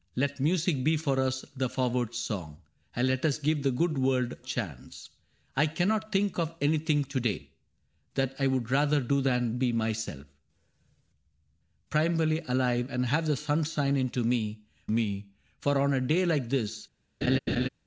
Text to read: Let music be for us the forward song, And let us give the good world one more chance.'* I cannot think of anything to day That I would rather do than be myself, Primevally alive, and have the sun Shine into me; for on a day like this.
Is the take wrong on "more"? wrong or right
wrong